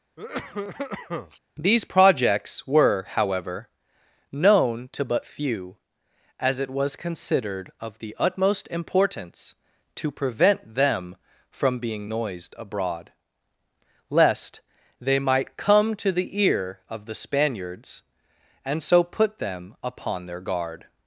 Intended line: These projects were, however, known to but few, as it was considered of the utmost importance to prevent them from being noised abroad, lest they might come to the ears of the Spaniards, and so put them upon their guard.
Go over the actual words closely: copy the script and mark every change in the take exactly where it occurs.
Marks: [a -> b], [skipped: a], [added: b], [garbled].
These projects were, however, known to but few, as it was considered of the utmost importance to prevent them from being noised abroad, lest they might come to the [ears -> ear] of the Spaniards, and so put them upon their guard.